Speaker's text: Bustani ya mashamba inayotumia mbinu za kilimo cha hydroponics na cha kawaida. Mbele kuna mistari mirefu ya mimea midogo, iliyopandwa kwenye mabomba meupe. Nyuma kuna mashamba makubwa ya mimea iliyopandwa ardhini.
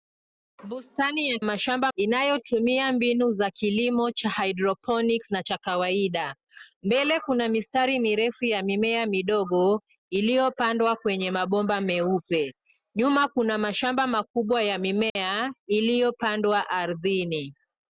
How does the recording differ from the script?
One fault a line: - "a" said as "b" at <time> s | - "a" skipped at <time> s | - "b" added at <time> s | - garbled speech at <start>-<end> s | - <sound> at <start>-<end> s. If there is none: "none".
- dropout at 15.1-15.2 s